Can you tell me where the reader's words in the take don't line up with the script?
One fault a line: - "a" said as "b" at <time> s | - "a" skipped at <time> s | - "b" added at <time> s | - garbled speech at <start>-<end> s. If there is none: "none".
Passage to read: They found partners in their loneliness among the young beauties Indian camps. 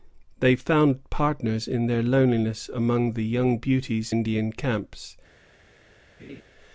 none